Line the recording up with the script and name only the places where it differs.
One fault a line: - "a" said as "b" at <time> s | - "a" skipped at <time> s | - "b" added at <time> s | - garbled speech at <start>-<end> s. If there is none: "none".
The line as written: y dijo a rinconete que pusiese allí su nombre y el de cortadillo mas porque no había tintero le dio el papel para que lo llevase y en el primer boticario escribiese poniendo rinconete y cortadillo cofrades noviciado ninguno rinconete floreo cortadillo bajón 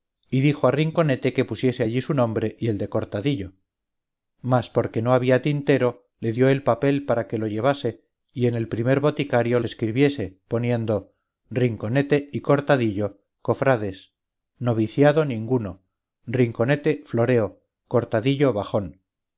none